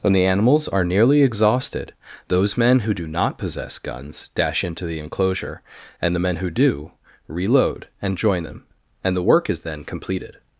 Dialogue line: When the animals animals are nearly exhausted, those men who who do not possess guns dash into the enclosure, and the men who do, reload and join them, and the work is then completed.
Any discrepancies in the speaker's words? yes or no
yes